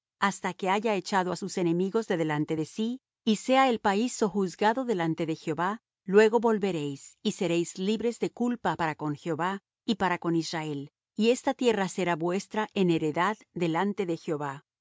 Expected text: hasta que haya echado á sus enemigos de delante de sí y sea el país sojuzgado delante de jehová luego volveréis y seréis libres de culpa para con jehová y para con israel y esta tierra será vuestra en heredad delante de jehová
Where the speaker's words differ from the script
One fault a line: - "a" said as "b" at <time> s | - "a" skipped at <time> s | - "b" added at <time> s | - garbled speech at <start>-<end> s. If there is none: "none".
none